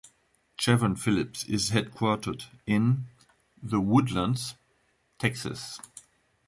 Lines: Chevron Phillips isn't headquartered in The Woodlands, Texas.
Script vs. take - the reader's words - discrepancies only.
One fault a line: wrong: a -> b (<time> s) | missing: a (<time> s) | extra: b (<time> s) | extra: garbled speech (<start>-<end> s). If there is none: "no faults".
wrong: isn't -> is (1.4 s)